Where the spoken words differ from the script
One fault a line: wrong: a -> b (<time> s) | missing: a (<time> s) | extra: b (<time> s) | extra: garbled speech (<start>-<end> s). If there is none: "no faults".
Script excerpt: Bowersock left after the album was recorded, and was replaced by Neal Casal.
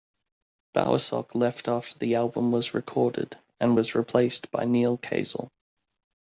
no faults